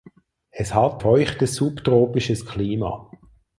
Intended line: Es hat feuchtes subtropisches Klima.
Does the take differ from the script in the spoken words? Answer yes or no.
no